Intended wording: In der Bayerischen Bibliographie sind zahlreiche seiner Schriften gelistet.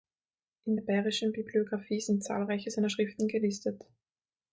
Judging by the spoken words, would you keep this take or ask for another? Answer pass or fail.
pass